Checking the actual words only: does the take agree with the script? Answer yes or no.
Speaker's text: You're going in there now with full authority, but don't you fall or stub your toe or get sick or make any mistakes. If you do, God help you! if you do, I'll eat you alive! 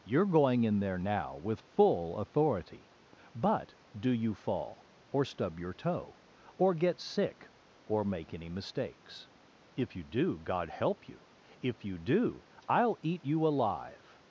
no